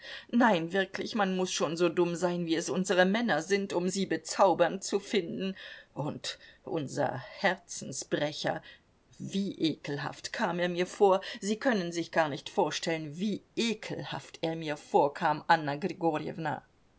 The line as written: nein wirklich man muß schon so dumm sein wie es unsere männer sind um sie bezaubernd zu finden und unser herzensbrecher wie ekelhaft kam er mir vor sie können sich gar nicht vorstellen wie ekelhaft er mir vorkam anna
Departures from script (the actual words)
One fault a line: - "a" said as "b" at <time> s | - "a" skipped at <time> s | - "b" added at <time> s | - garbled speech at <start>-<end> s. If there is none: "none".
none